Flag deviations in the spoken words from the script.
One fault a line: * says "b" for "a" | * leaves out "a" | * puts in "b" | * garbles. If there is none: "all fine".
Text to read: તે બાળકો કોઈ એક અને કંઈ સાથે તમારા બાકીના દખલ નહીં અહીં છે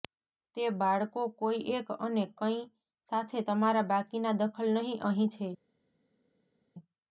all fine